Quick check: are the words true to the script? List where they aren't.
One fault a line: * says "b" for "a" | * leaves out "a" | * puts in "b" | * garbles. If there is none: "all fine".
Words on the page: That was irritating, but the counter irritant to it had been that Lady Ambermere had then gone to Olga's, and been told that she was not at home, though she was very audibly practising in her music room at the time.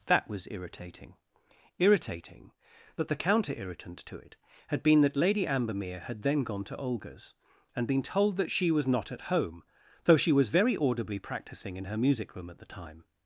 * puts in "irritating"